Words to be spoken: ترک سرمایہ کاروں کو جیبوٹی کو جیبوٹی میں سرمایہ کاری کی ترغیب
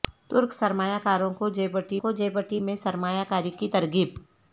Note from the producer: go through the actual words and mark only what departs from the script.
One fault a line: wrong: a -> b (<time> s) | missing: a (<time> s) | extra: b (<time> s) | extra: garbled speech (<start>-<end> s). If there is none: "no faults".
no faults